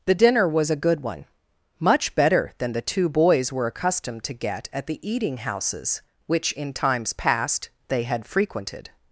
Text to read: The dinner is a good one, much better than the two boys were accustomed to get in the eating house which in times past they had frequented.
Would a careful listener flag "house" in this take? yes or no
yes